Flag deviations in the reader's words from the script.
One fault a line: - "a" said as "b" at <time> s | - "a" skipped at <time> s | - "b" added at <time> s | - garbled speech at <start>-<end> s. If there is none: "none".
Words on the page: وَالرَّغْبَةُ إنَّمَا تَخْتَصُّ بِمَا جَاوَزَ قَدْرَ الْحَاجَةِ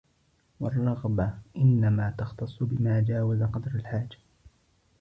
none